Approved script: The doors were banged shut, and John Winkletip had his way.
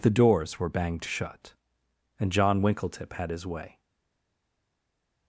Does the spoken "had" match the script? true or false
true